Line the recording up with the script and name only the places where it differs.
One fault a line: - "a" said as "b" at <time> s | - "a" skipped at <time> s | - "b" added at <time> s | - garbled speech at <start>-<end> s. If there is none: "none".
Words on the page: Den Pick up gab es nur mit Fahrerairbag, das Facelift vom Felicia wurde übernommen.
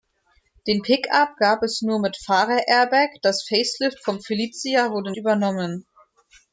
none